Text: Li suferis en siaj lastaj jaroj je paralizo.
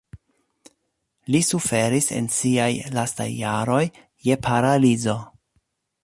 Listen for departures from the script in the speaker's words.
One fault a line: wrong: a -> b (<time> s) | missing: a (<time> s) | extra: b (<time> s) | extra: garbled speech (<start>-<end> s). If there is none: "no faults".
no faults